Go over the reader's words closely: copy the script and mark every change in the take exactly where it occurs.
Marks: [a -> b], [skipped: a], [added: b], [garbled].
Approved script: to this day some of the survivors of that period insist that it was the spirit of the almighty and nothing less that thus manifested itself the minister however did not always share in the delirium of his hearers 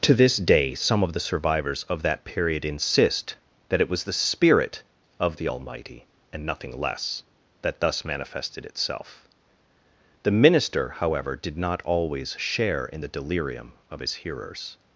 to this day some of the survivors of that period insist that it was the spirit of the almighty and nothing less that thus manifested itself the minister however did not always share in the delirium of his hearers